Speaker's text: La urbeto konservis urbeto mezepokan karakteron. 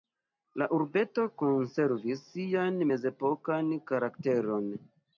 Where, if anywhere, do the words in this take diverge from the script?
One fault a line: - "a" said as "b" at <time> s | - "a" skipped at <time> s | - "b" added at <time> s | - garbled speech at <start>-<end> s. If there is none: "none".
- "urbeto" said as "sian" at 2.3 s